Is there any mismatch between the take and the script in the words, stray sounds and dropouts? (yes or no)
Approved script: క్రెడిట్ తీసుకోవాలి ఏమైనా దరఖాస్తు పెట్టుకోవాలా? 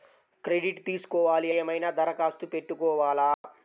yes